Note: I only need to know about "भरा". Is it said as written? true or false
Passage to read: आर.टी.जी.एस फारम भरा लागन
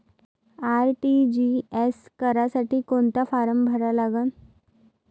true